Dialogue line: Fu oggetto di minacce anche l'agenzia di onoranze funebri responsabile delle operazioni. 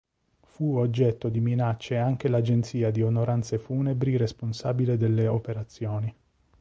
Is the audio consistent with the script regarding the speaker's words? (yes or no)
yes